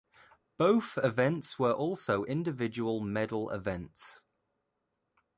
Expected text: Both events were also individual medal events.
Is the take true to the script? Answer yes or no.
yes